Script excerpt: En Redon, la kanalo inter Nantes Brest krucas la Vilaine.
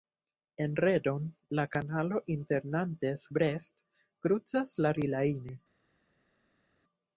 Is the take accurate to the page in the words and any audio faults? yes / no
yes